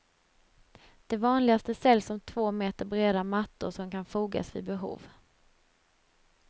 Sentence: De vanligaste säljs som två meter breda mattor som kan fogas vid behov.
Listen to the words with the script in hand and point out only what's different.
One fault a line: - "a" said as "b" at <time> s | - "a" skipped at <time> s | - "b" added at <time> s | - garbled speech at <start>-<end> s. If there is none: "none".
none